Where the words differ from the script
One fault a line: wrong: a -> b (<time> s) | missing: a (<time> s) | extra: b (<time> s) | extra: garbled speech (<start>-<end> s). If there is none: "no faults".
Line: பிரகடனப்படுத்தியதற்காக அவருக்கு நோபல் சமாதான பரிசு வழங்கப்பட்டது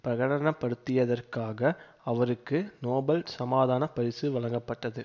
no faults